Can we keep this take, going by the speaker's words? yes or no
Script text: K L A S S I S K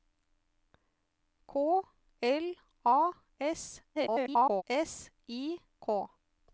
no